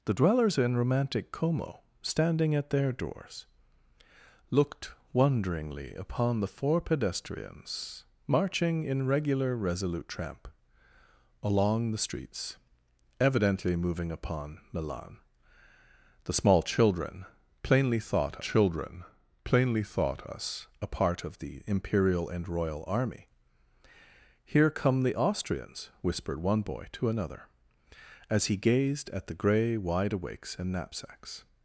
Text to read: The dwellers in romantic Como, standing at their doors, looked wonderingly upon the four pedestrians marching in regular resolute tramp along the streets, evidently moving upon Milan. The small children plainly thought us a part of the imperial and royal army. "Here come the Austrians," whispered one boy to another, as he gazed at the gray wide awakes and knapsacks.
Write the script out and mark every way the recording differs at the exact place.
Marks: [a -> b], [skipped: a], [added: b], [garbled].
The dwellers in romantic Como, standing at their doors, looked wonderingly upon the four pedestrians marching in regular resolute tramp along the streets, evidently moving upon Milan. The small children plainly thought [added: children plainly thought] us a part of the imperial and royal army. "Here come the Austrians," whispered one boy to another, as he gazed at the gray wide awakes and knapsacks.